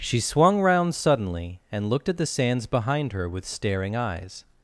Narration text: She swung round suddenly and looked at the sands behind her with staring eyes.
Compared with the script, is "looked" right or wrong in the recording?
right